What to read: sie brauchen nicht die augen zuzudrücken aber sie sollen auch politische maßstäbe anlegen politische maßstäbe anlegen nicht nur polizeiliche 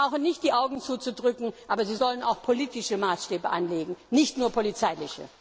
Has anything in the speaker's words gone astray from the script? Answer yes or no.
yes